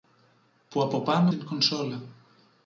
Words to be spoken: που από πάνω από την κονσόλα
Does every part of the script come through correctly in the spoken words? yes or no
no